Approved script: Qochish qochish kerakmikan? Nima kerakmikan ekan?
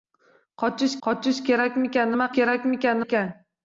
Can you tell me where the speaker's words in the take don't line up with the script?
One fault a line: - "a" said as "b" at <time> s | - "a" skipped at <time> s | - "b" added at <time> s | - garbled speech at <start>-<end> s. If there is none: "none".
none